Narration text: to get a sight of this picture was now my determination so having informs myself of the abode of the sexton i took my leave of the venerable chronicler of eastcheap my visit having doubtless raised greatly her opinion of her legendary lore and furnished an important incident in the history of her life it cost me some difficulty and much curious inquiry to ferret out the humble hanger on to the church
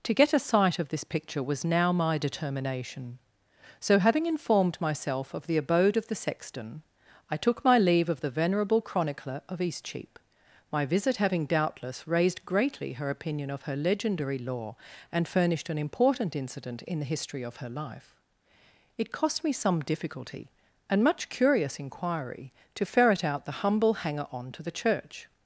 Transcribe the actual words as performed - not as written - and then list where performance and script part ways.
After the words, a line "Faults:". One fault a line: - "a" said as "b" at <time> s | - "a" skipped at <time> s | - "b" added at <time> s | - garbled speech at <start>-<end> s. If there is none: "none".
to get a sight of this picture was now my determination so having informed myself of the abode of the sexton i took my leave of the venerable chronicler of eastcheap my visit having doubtless raised greatly her opinion of her legendary lore and furnished an important incident in the history of her life it cost me some difficulty and much curious inquiry to ferret out the humble hanger on to the church
Faults:
- "informs" said as "informed" at 4.2 s